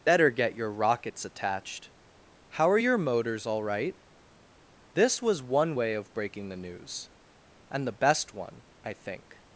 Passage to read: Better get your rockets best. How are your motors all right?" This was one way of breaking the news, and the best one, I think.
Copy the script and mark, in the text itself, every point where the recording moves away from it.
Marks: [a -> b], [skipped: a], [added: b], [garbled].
Better get your rockets [best. -> attached] How are your motors all right?" This was one way of breaking the news, and the best one, I think.